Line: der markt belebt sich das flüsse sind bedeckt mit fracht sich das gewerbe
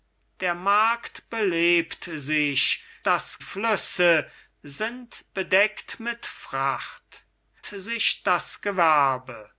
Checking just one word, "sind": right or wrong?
right